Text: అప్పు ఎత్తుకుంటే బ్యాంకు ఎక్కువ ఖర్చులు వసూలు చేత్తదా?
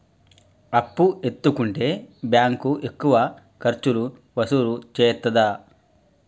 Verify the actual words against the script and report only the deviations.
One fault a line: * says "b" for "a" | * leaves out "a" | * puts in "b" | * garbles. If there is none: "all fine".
all fine